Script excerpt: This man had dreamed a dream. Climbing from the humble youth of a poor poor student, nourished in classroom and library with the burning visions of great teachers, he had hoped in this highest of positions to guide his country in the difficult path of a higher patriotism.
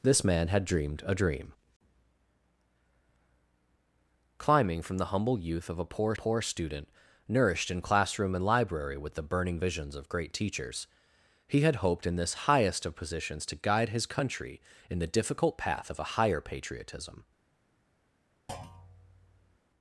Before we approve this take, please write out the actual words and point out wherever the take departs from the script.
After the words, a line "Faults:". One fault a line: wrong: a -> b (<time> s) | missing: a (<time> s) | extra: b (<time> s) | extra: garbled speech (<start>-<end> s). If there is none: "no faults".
This man had dreamed a dream. Climbing from the humble youth of a poor poor student, nourished in classroom and library with the burning visions of great teachers, he had hoped in this highest of positions to guide his country in the difficult path of a higher patriotism.
Faults:
no faults